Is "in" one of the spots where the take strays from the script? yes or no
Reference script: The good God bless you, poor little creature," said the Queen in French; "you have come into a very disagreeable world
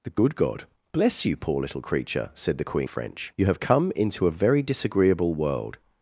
yes